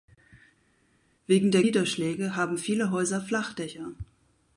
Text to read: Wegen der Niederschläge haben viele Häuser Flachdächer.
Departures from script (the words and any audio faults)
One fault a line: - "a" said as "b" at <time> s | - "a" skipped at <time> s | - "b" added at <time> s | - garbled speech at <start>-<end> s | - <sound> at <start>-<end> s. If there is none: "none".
none